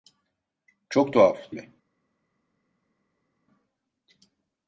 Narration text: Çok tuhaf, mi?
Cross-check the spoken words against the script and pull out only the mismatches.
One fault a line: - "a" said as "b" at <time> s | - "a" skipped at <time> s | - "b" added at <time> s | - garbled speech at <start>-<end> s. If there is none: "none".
none